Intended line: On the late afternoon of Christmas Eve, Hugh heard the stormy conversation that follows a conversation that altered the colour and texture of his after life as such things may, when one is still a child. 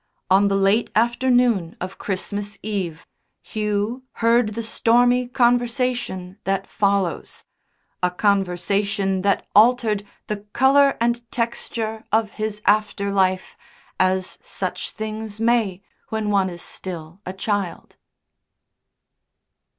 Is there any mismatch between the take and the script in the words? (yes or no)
no